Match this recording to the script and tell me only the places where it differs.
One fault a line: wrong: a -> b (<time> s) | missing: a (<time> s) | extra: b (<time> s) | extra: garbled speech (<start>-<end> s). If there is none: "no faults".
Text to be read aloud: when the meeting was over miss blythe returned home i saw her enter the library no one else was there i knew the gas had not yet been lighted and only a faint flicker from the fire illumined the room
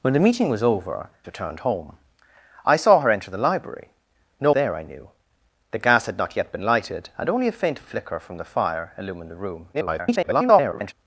missing: miss blythe (1.1 s)
missing: one else was (4.5 s)
extra: garbled speech (9.7-10.9 s)